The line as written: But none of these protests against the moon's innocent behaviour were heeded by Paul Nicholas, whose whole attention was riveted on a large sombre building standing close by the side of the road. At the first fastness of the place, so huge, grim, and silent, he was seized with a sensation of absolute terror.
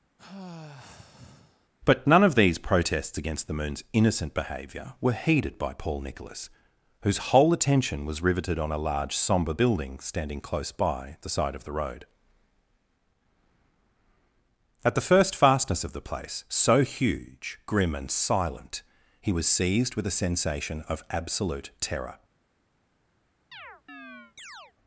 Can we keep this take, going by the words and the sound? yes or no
no